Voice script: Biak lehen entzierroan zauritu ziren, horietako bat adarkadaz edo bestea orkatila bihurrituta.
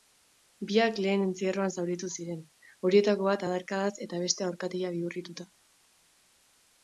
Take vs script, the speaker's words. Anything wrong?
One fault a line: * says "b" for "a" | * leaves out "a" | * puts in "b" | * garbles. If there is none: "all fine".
* says "eta" for "edo"